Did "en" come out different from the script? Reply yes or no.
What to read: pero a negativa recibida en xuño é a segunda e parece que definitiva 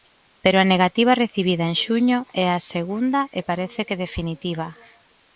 no